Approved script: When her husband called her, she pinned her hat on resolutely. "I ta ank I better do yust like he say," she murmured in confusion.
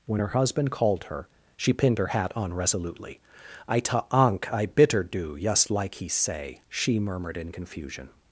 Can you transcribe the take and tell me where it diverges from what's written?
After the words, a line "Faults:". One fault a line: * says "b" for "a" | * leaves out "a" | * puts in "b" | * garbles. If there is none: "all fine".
When her husband called her, she pinned her hat on resolutely. "I ta ank I bitter do yust like he say," she murmured in confusion.
Faults:
* says "bitter" for "better"